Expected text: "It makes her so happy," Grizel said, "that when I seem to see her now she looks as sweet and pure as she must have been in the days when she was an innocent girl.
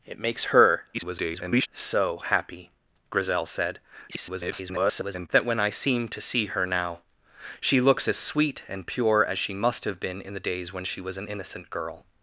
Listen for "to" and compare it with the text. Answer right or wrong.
right